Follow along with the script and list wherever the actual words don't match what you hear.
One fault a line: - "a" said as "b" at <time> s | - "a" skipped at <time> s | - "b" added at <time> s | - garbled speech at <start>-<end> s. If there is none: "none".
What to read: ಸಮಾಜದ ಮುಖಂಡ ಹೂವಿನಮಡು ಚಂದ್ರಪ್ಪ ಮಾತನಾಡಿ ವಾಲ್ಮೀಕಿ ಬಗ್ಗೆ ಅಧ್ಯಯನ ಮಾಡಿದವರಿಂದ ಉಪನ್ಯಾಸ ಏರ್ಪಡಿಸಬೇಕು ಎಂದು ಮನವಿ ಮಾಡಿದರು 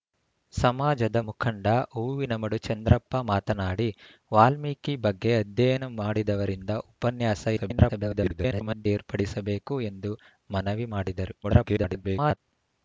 - garbled speech at 7.6-8.9 s
- garbled speech at 11.4-12.4 s